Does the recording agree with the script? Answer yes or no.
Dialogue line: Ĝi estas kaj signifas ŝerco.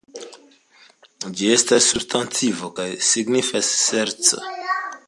no